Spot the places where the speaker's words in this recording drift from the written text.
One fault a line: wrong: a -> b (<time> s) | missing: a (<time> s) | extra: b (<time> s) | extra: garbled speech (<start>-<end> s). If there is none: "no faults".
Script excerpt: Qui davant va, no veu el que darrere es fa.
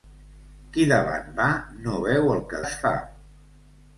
missing: darrere (2.6 s)